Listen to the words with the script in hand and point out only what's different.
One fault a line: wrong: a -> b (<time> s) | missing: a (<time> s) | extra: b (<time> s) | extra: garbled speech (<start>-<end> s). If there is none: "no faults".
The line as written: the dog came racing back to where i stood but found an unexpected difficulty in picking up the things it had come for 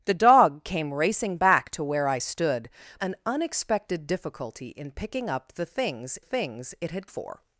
missing: but found (2.7 s)
extra: things (6.2 s)
missing: come (7.1 s)